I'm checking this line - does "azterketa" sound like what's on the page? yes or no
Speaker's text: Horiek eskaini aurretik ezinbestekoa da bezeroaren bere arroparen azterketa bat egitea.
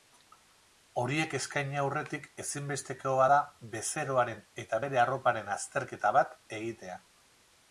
yes